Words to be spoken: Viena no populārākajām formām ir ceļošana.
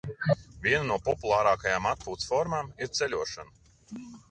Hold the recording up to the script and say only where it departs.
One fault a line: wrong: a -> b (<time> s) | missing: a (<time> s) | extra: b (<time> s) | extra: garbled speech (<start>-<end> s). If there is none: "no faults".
extra: atpūtas (1.9 s)